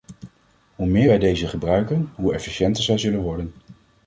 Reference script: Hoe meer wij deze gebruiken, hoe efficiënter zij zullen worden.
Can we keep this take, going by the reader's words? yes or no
yes